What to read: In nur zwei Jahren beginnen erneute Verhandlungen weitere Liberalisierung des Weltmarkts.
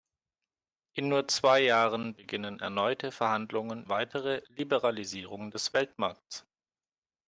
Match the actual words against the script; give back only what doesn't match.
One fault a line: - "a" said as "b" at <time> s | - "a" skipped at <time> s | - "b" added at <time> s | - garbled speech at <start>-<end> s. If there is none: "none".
none